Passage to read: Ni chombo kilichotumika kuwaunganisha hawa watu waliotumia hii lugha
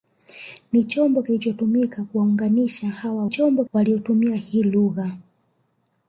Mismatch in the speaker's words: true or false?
true